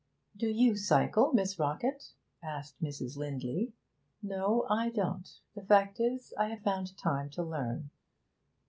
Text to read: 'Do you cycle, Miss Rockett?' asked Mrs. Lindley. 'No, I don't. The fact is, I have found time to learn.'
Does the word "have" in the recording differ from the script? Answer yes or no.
no